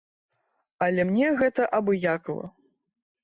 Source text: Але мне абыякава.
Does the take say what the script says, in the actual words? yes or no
no